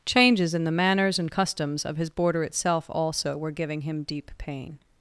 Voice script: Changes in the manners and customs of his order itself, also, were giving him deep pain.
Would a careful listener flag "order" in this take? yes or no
yes